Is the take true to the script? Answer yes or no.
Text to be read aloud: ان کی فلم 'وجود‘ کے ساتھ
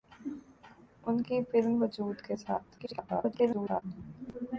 no